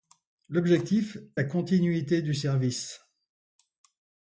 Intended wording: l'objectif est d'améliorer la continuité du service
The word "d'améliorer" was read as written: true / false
false